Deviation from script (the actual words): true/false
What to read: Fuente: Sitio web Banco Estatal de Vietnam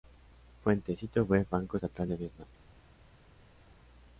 false